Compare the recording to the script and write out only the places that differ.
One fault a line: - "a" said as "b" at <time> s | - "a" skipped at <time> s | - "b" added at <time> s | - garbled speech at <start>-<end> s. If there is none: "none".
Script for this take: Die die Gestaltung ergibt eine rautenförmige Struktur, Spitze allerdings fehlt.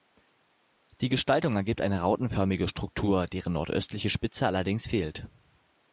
- "die" skipped at 1.1 s
- "deren nordöstliche" added at 3.3 s